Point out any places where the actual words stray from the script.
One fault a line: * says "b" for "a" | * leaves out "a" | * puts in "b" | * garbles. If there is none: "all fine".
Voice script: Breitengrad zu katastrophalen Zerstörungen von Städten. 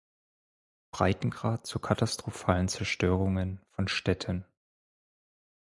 all fine